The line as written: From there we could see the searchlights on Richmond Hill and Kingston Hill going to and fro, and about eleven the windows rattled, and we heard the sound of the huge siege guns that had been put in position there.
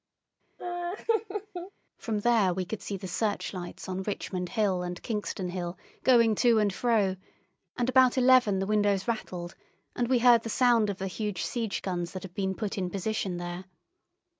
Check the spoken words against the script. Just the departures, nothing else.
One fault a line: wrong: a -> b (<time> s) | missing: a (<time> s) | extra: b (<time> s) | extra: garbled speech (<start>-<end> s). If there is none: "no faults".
no faults